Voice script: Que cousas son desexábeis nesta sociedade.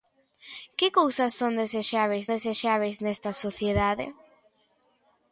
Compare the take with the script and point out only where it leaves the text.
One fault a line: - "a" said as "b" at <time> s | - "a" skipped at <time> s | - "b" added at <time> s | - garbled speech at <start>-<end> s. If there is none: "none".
- "desexábeis" added at 2.3 s